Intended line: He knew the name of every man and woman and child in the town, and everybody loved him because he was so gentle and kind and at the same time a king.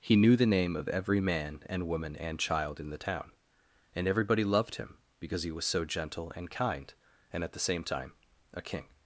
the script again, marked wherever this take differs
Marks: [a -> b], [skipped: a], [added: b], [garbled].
He knew the name of every man and woman and child in the town, and everybody loved him because he was so gentle and kind and at the same time a king.